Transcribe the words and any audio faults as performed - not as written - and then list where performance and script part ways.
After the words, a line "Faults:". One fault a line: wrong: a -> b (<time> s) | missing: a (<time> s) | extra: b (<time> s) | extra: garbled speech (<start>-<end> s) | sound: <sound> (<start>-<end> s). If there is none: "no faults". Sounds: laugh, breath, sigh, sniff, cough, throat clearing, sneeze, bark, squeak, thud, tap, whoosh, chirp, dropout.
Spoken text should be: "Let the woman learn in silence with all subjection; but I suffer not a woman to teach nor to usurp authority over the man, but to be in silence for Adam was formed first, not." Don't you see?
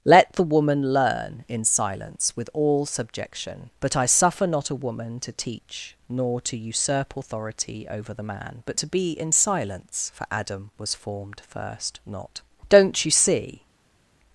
"Let the woman learn in silence with all subjection; but I suffer not a woman to teach nor to usurp authority over the man, but to be in silence for Adam was formed first, not." Don't you see?
Faults:
no faults